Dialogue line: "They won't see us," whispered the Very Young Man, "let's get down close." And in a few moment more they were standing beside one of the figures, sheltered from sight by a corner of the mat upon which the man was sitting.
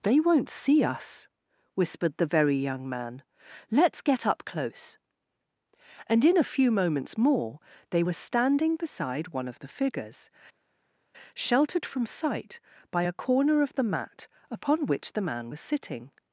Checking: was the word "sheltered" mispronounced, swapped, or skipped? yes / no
no